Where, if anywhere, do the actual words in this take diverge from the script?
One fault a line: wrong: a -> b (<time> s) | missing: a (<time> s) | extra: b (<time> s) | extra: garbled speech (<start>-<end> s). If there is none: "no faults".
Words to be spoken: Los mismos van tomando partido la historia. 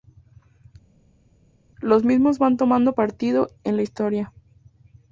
extra: en (3.6 s)